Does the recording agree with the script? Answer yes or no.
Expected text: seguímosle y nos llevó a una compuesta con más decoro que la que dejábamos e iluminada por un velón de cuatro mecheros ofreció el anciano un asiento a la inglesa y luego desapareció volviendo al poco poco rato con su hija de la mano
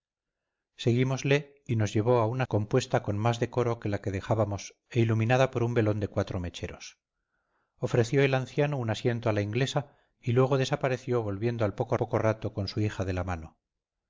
yes